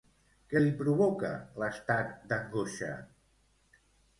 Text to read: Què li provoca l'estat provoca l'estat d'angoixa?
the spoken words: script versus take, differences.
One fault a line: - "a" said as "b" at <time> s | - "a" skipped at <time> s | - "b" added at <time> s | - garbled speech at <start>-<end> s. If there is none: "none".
- "provoca l'estat" skipped at 2.1 s